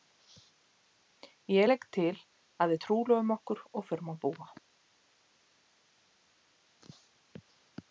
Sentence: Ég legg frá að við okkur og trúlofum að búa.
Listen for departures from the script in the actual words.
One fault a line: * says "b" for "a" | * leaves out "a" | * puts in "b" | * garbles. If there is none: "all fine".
* says "til" for "frá"
* puts in "trúlofum"
* says "förum" for "trúlofum"